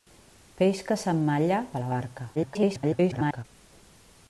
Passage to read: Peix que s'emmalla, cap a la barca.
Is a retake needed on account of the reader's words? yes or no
yes